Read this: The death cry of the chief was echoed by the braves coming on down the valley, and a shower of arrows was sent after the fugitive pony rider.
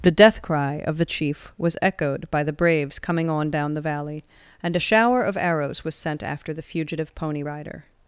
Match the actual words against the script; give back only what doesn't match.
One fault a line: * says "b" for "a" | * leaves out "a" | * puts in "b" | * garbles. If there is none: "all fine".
all fine